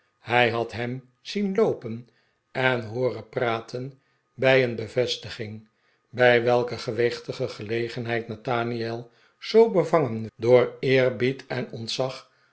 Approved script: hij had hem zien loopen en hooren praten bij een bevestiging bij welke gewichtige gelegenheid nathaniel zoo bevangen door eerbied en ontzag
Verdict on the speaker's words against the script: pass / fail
pass